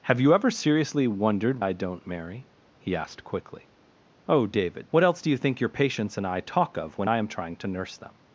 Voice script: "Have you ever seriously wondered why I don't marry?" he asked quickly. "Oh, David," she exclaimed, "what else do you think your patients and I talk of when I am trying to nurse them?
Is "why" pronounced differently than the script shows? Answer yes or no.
yes